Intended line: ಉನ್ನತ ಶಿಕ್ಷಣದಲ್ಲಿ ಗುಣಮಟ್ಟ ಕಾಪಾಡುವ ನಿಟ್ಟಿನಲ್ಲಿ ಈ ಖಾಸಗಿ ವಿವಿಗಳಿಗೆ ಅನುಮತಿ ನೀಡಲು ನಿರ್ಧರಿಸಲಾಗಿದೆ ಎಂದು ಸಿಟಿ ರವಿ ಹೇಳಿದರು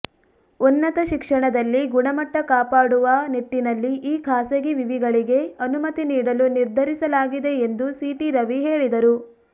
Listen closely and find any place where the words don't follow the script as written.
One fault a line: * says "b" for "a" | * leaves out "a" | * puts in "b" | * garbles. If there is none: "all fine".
all fine